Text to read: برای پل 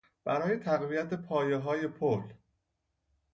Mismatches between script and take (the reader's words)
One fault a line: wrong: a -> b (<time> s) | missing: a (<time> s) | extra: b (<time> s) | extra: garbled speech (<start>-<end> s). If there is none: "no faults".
extra: تقویت پایههای (0.6 s)